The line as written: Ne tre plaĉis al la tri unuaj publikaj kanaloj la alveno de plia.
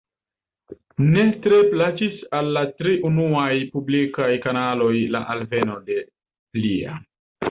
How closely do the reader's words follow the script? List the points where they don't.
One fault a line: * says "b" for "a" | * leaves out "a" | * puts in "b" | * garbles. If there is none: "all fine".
all fine